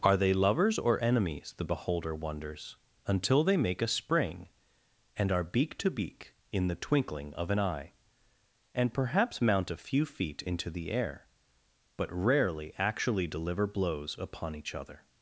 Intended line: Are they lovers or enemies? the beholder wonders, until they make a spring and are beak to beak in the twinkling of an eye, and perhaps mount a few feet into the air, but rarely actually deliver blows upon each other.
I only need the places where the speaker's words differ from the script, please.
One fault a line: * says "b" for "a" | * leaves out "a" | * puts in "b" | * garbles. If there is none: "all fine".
all fine